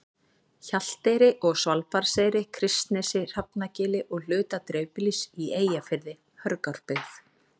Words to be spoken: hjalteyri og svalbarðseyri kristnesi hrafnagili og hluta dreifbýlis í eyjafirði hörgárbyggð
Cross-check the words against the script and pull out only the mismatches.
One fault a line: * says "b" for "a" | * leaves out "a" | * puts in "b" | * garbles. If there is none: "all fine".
all fine